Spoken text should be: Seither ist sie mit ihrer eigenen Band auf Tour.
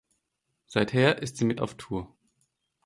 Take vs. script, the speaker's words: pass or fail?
fail